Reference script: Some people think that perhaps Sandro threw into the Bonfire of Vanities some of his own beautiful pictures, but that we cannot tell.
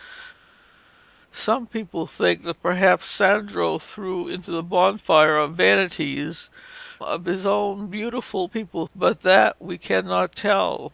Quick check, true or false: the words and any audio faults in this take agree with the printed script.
false